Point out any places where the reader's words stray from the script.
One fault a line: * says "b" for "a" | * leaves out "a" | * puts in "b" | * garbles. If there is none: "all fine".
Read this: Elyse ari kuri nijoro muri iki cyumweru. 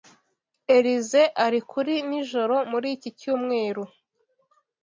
all fine